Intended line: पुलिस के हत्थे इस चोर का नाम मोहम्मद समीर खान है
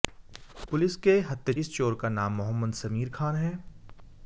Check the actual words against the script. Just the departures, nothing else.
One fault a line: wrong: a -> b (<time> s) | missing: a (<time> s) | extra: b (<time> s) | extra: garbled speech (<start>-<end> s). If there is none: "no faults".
no faults